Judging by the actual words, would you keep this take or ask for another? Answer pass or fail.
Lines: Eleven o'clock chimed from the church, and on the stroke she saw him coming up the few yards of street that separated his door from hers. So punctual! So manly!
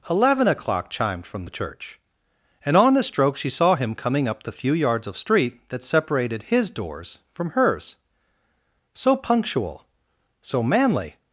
fail